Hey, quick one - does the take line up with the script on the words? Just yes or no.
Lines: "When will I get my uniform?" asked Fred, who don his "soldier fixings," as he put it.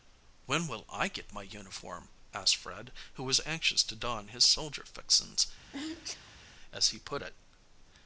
no